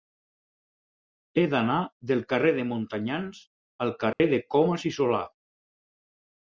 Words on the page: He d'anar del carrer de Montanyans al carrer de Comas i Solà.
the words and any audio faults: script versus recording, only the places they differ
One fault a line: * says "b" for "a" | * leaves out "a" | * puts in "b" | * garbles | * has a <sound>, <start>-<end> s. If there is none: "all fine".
* has a dropout, 4.1-4.2 s